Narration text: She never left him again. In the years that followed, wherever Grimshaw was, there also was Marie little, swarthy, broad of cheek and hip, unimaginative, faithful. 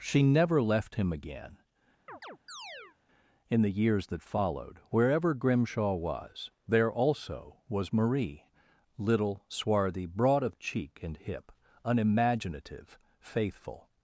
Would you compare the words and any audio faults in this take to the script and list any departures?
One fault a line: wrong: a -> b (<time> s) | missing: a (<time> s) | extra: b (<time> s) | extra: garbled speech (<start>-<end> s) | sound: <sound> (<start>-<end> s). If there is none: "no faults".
sound: chirp (2.1-3.0 s)